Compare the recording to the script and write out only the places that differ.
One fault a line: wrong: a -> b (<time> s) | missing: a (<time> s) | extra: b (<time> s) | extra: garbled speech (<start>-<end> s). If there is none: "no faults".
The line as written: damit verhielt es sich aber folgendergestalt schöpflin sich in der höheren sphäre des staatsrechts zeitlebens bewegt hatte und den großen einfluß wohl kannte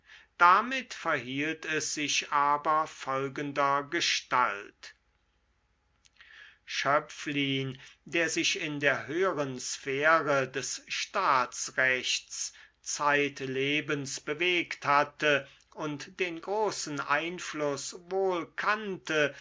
extra: der (8.1 s)